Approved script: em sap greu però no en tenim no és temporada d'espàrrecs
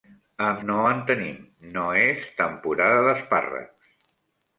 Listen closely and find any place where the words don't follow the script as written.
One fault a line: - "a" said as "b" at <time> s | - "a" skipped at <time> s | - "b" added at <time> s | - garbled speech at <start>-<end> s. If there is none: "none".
- "sap greu però" skipped at 0.6 s